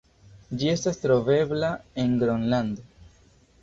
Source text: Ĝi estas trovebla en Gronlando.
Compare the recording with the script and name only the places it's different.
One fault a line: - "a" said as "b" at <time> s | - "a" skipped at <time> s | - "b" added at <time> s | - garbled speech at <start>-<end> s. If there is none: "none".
none